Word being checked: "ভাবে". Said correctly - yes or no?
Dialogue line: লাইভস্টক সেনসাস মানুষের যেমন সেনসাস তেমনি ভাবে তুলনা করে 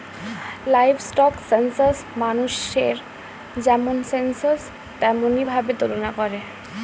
yes